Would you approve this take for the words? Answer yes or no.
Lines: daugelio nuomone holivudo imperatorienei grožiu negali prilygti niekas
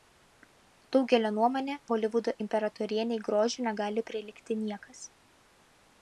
yes